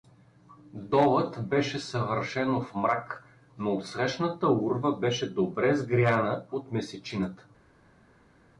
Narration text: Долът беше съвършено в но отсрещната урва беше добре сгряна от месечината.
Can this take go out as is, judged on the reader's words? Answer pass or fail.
fail